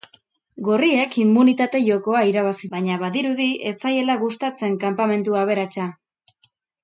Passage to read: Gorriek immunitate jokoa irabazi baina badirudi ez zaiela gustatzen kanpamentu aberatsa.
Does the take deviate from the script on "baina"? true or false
false